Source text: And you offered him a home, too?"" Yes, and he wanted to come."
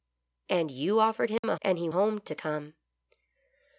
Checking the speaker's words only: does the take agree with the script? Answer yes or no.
no